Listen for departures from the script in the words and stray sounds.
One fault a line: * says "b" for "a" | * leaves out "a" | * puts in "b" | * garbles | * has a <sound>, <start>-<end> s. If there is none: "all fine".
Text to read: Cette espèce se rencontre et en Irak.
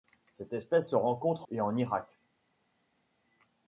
all fine